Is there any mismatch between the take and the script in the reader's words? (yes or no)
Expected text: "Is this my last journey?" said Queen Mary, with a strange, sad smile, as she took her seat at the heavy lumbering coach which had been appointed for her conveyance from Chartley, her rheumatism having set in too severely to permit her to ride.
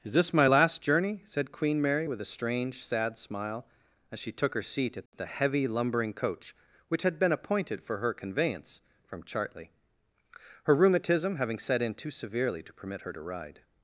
no